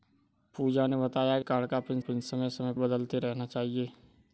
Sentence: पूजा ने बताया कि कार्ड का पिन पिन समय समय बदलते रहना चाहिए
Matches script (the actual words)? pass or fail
pass